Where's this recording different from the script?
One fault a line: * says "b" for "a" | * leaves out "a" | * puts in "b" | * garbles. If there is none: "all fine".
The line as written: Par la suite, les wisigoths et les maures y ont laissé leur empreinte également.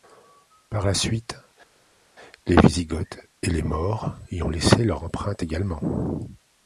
all fine